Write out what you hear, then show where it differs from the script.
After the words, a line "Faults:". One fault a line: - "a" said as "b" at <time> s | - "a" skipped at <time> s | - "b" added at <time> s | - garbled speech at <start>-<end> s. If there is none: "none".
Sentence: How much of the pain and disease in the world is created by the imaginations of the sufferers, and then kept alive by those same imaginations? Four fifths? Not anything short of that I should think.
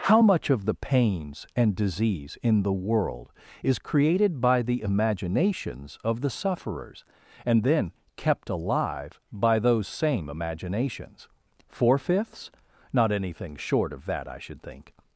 How much of the pains and disease in the world is created by the imaginations of the sufferers, and then kept alive by those same imaginations? Four fifths? Not anything short of that I should think.
Faults:
- "pain" said as "pains" at 0.7 s